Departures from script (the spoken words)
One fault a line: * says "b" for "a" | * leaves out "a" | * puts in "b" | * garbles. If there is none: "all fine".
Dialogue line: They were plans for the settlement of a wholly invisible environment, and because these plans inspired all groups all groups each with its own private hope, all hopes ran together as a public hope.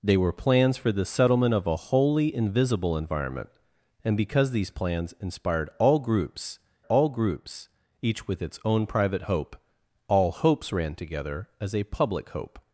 all fine